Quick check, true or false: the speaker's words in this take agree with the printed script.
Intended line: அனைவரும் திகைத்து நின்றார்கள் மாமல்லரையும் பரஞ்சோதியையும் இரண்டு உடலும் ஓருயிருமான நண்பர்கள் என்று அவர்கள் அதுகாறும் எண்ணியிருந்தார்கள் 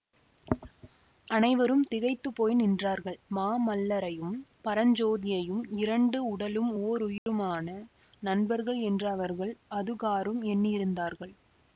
false